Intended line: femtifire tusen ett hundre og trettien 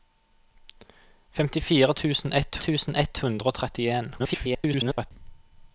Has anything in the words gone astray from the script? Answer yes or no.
yes